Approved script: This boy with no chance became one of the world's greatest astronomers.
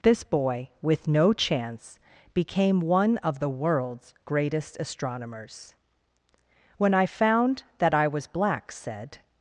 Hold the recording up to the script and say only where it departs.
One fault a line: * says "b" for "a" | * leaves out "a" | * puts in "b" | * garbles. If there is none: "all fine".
* puts in "When I found that I was black said"